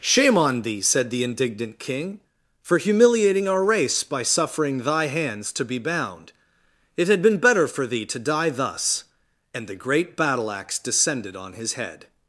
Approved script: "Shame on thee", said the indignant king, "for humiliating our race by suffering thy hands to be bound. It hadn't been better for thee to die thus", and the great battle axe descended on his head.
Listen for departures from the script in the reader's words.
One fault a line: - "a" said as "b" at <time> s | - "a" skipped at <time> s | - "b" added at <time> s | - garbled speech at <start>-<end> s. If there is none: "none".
- "hadn't" said as "had" at 7.1 s